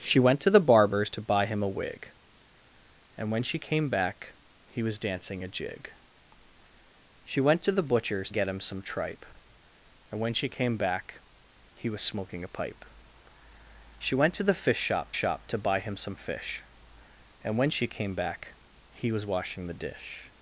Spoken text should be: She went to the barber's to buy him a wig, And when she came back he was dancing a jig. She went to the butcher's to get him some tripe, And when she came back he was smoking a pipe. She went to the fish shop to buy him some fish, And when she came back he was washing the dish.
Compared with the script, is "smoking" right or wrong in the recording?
right